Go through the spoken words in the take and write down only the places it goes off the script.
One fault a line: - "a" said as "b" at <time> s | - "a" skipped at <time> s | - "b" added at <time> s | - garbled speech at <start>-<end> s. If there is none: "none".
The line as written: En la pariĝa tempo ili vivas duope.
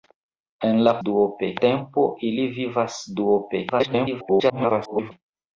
- "pariĝa" said as "duope" at 1.1 s
- garbled speech at 3.7-5.1 s